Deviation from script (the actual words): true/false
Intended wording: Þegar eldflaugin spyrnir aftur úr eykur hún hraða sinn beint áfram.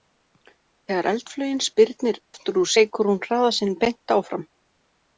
false